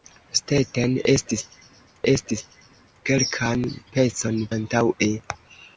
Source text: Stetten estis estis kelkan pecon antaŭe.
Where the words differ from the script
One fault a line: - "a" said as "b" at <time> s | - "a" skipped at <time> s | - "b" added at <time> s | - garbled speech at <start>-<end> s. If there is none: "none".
none